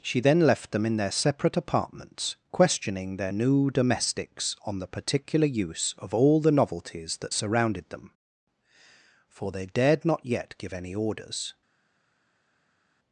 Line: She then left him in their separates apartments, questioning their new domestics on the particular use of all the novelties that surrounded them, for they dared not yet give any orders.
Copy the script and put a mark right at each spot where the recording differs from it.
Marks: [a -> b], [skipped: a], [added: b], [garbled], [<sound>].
She then left [him -> them] in their [separates -> separate] apartments, questioning their new domestics on the particular use of all the novelties that surrounded them, for they dared not yet give any orders.